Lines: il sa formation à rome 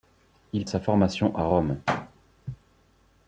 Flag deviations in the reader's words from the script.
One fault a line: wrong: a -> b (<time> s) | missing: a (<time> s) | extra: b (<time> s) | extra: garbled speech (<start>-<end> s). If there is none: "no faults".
no faults